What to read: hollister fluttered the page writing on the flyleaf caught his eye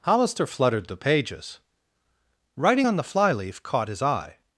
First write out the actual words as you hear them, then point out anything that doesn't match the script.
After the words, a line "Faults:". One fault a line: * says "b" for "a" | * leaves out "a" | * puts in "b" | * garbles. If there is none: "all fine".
hollister fluttered the pages writing on the flyleaf caught his eye
Faults:
* says "pages" for "page"